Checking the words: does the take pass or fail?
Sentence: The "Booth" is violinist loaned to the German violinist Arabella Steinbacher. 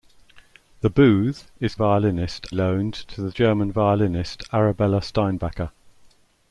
pass